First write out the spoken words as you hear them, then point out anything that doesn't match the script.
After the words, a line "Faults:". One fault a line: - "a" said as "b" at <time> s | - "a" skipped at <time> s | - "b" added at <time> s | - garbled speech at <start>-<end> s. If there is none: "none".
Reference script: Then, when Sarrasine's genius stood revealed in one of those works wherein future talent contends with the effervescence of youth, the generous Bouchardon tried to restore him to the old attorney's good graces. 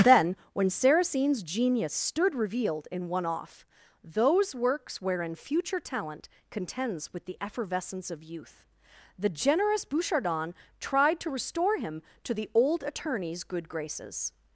Then, when Sarrasine's genius stood revealed in one off those works wherein future talent contends with the effervescence of youth, the generous Bouchardon tried to restore him to the old attorney's good graces.
Faults:
- "of" said as "off" at 3.2 s